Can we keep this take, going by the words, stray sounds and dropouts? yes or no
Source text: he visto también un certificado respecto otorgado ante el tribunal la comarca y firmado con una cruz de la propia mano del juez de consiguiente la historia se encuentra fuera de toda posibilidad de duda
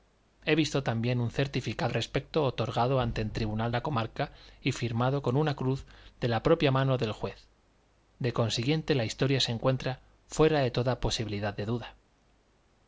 yes